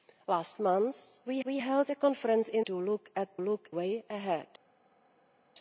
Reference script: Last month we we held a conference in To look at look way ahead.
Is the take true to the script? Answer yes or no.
yes